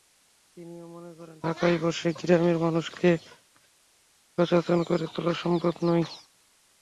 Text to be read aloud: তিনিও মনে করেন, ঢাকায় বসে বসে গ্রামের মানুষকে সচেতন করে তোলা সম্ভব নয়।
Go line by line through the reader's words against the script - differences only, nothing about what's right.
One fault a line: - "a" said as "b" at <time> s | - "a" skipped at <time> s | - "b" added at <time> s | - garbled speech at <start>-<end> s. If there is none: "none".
- "বসে" skipped at 2.1 s